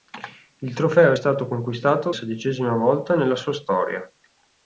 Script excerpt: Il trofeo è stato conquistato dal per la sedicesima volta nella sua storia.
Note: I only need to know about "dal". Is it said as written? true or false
false